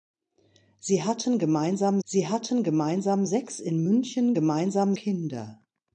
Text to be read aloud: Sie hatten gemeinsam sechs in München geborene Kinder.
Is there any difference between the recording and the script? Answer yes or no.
yes